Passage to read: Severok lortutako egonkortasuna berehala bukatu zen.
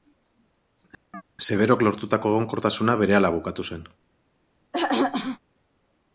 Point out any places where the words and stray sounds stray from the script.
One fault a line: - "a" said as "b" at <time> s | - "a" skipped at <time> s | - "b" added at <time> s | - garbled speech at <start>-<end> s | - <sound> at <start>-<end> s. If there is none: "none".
- chirp at 1.1-1.2 s
- throat clearing at 4.7-5.4 s